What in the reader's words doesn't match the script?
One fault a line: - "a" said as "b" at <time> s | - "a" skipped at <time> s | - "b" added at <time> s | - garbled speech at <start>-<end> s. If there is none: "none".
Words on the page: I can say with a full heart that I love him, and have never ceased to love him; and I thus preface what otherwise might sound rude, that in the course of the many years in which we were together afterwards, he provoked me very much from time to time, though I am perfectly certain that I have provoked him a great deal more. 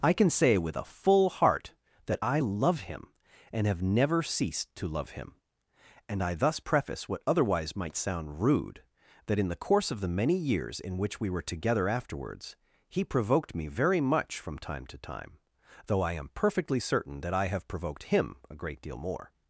none